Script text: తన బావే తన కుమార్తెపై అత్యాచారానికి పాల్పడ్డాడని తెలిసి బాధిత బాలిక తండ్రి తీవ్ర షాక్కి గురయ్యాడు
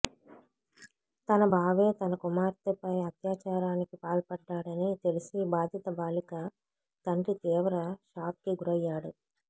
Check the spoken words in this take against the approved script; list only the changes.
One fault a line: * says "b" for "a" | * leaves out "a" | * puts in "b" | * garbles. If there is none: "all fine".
all fine